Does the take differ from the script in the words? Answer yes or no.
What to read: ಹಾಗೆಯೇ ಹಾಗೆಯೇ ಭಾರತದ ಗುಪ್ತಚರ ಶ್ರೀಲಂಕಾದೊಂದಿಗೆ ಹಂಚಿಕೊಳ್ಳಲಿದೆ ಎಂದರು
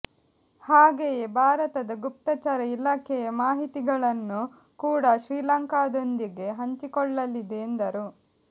yes